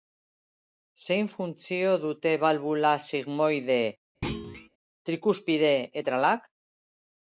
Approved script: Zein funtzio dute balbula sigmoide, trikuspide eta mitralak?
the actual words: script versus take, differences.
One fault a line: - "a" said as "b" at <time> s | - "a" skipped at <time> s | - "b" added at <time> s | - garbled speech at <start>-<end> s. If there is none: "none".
- "eta" skipped at 5.7 s